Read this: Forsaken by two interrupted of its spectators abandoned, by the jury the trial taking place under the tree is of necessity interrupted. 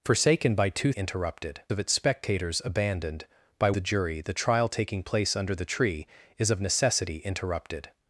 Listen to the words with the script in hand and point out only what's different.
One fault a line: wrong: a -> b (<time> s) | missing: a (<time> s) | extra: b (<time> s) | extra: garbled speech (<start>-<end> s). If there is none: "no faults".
no faults